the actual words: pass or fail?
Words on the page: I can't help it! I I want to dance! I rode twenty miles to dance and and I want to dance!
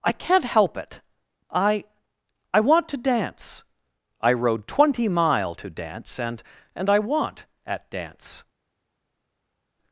fail